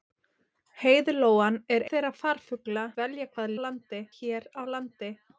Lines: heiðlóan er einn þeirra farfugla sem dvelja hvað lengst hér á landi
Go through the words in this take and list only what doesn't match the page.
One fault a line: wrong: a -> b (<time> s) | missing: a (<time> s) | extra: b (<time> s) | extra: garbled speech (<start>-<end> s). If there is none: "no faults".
missing: einn (1.9 s)
missing: sem (2.9 s)
wrong: lengst -> landi (3.7 s)